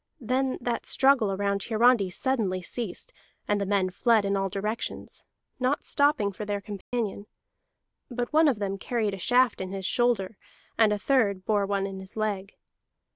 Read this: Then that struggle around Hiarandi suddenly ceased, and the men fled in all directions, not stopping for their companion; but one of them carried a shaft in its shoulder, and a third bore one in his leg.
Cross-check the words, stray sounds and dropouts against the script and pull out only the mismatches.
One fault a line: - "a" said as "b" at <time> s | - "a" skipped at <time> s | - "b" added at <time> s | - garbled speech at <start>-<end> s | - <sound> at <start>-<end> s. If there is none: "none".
- dropout at 6.8-6.9 s
- "its" said as "his" at 9.7 s